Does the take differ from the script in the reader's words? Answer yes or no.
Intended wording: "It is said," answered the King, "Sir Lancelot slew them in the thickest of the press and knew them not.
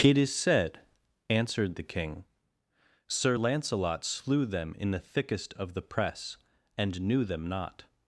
no